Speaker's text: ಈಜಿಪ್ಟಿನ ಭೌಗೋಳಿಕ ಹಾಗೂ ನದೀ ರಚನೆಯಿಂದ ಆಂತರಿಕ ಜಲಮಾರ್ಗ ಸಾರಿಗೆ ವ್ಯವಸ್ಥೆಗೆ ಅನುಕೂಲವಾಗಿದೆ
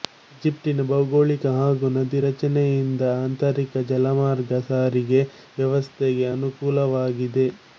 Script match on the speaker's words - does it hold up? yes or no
yes